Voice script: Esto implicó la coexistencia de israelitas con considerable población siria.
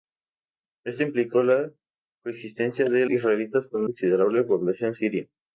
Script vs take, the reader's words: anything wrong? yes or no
no